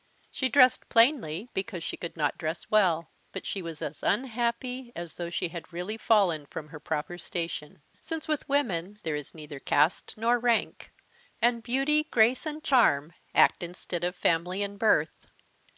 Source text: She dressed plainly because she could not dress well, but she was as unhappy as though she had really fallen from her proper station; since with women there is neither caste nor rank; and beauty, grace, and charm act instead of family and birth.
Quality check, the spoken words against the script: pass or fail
pass